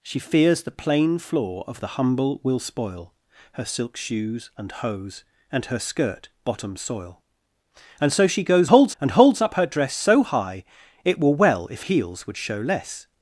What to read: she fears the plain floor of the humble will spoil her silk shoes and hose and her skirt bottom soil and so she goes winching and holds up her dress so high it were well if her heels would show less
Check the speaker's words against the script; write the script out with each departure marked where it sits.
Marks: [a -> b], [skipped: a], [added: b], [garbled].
she fears the plain floor of the humble will spoil her silk shoes and hose and her skirt bottom soil and so she goes [winching -> holds] and holds up her dress so high it were well if [skipped: her] heels would show less